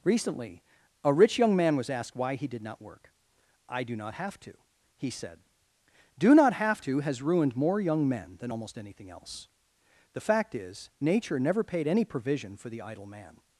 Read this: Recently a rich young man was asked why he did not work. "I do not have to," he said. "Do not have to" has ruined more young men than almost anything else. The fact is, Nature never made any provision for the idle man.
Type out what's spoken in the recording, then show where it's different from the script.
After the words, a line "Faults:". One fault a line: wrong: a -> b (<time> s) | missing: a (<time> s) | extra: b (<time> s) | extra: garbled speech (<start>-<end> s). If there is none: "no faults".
Recently a rich young man was asked why he did not work. "I do not have to," he said. "Do not have to" has ruined more young men than almost anything else. The fact is, Nature never paid any provision for the idle man.
Faults:
wrong: made -> paid (11.6 s)